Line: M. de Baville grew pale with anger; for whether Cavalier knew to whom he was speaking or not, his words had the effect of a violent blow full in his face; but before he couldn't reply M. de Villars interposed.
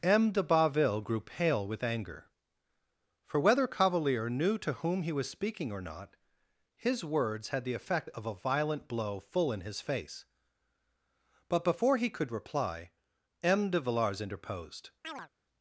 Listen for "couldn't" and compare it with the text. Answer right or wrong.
wrong